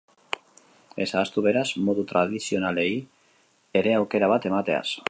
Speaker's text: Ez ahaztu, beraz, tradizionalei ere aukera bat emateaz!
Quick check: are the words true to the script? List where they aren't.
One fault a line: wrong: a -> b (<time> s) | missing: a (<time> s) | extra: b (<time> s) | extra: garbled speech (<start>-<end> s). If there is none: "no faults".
extra: modu (1.9 s)